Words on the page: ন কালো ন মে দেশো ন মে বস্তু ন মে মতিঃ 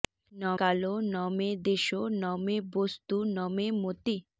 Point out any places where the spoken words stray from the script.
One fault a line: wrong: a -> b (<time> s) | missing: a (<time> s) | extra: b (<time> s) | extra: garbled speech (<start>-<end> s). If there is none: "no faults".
no faults